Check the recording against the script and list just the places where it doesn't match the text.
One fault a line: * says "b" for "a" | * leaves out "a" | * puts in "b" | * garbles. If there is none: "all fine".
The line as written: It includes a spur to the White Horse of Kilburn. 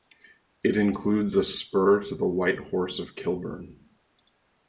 all fine